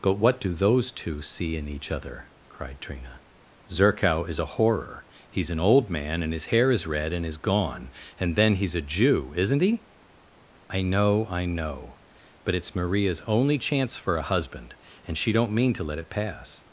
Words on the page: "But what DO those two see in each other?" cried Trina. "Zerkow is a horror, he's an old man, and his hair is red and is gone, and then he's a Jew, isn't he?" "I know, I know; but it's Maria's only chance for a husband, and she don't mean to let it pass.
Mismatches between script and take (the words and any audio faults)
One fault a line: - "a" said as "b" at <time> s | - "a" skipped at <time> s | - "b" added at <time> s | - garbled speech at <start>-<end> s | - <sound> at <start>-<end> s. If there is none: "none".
none